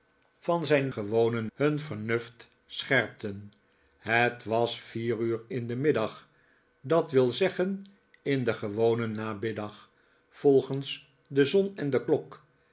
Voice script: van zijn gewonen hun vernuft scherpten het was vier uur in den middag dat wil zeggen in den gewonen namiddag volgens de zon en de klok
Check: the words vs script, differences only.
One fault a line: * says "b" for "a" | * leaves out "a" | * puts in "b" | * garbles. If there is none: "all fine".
all fine